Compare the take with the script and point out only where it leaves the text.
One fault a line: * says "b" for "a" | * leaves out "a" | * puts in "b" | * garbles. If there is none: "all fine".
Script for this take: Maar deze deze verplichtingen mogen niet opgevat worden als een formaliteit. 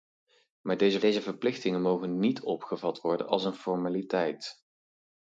all fine